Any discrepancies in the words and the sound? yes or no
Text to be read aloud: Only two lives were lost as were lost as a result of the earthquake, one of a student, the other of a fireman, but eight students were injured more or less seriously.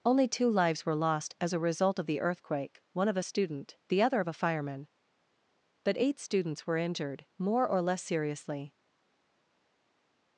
yes